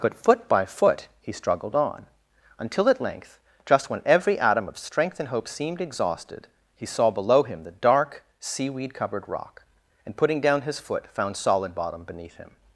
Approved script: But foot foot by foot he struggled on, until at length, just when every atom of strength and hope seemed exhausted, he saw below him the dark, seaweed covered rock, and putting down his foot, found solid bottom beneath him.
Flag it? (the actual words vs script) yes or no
yes